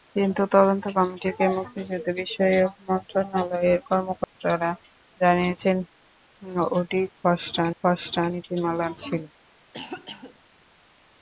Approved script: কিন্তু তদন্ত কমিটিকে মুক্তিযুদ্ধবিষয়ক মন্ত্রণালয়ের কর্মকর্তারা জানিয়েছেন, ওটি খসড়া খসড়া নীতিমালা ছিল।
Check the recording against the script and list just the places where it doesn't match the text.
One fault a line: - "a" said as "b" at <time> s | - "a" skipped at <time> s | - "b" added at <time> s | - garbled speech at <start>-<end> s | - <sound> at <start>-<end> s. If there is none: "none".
- dropout at 4.2-4.3 s
- cough at 9.7-10.4 s